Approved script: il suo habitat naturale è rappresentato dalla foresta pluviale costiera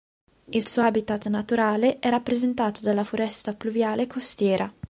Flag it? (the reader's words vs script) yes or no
no